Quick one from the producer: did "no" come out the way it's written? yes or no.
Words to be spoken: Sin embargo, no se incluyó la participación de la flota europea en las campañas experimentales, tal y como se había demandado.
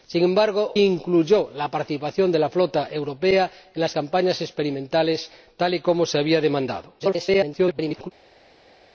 no